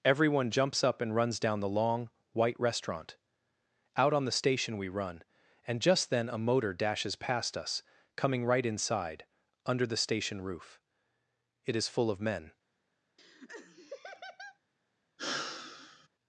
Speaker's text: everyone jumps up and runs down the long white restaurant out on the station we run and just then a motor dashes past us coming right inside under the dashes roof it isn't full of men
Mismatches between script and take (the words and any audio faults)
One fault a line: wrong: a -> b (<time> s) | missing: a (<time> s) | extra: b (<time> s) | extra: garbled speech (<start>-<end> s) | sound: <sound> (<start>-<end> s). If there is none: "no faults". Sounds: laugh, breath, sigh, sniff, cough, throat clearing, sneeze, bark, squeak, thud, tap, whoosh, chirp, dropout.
wrong: dashes -> station (10.0 s)
wrong: isn't -> is (11.8 s)
sound: laugh (13.2-14.6 s)
sound: sigh (15.2-16.1 s)